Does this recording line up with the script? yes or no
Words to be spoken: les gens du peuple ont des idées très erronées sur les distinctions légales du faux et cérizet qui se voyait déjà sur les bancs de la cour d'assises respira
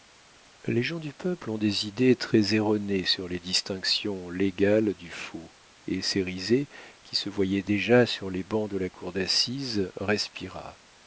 yes